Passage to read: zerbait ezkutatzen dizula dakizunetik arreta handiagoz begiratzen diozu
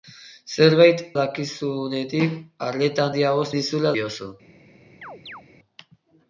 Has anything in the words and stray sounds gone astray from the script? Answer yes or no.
yes